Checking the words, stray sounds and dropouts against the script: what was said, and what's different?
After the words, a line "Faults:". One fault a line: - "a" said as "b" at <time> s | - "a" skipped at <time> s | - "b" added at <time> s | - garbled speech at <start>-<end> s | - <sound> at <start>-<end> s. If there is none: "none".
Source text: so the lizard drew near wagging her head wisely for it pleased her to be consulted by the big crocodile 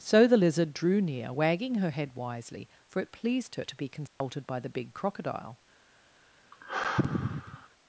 so the lizard drew near wagging her head wisely for it pleased her to be consulted by the big crocodile
Faults:
- dropout at 4.1-4.2 s
- sigh at 6.5-7.7 s